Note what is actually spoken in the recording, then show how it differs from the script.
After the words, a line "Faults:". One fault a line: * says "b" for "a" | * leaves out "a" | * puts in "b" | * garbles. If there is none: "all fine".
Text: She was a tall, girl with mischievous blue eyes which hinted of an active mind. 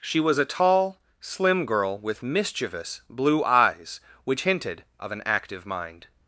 She was a tall, slim girl with mischievous blue eyes which hinted of an active mind.
Faults:
* puts in "slim"